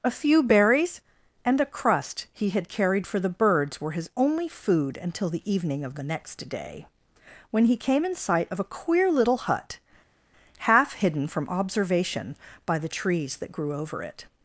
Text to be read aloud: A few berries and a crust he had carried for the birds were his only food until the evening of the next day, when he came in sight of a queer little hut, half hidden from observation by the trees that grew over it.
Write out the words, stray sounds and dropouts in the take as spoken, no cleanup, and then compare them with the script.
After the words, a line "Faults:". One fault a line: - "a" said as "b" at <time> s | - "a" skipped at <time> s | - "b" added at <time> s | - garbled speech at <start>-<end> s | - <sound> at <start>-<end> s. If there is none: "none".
A few berries and a crust he had carried for the birds were his only food until the evening of the next day, when he came in sight of a queer little hut, half hidden from observation by the trees that grew over it.
Faults:
none